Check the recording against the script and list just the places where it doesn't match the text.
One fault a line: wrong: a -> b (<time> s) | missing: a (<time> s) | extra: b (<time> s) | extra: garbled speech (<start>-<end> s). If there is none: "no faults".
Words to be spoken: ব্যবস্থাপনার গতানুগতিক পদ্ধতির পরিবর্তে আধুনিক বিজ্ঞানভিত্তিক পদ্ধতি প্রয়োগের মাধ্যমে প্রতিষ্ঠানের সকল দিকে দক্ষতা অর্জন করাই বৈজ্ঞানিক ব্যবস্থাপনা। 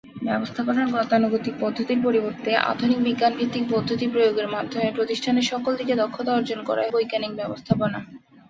no faults